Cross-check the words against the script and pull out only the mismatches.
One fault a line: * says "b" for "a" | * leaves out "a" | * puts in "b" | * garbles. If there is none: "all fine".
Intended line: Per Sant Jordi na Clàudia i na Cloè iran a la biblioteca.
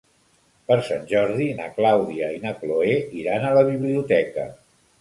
all fine